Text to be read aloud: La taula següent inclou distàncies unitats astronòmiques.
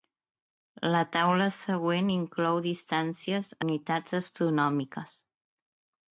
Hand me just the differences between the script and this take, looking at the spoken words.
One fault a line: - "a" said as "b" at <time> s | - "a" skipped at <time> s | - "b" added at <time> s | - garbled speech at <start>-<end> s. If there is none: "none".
none